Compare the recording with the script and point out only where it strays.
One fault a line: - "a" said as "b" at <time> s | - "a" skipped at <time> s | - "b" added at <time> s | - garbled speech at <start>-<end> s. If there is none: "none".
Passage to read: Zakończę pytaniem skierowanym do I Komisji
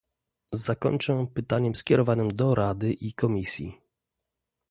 - "Rady" added at 2.5 s